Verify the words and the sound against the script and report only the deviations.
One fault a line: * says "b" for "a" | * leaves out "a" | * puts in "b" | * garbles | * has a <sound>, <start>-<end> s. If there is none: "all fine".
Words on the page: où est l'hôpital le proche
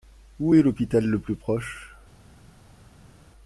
* puts in "plus"